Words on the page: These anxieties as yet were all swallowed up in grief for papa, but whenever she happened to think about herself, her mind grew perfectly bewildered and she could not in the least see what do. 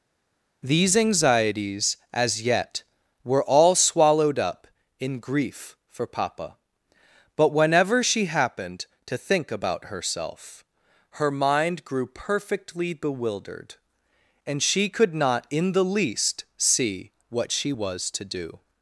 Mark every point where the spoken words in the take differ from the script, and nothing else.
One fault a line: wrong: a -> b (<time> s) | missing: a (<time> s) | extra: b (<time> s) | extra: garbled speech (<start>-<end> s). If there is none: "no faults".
extra: she was to (17.5 s)